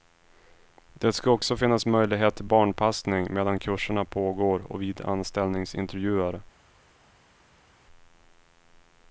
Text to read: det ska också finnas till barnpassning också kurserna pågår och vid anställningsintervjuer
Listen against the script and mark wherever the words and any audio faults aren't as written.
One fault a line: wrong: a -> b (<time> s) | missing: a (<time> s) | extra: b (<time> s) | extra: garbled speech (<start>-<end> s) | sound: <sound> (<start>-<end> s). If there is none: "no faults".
extra: möjlighet (1.9 s)
wrong: också -> medan (3.3 s)